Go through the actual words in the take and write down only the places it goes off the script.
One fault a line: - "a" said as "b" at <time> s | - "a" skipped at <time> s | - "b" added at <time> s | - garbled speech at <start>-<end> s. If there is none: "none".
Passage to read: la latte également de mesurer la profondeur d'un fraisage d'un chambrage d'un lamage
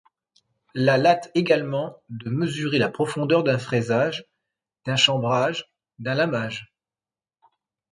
none